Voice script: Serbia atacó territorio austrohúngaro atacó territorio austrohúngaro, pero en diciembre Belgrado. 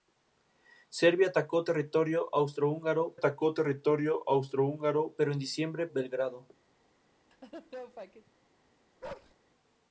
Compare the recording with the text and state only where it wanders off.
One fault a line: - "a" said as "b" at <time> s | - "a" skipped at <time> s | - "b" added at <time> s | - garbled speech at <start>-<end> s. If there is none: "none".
none